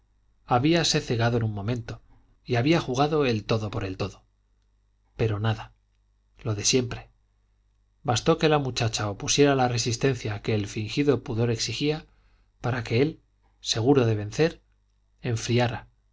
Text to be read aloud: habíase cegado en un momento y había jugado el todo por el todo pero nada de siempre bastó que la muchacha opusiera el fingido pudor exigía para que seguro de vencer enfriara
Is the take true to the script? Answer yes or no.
no